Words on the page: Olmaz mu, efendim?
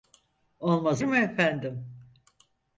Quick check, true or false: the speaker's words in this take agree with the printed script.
true